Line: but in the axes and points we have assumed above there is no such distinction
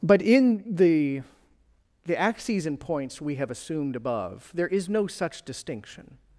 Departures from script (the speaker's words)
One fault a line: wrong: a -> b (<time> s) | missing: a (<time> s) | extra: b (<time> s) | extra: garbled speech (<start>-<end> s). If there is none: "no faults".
extra: the (2.0 s)